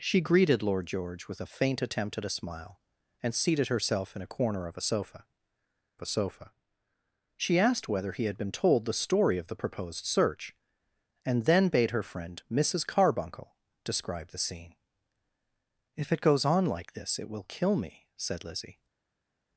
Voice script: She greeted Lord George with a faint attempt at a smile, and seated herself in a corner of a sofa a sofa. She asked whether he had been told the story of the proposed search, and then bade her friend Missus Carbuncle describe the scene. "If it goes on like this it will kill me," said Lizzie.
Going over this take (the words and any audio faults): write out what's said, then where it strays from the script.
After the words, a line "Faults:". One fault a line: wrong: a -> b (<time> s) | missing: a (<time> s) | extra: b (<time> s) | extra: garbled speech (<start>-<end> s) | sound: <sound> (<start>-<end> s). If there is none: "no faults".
She greeted Lord George with a faint attempt at a smile, and seated herself in a corner of a sofa a sofa. She asked whether he had been told the story of the proposed search, and then bade her friend Missus Carbuncle describe the scene. "If it goes on like this it will kill me," said Lizzie.
Faults:
no faults